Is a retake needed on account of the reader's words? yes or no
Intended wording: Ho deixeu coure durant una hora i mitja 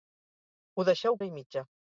yes